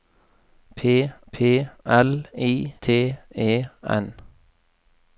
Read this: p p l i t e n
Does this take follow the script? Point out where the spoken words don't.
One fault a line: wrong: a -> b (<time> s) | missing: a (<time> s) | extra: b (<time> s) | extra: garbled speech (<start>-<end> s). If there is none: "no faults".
no faults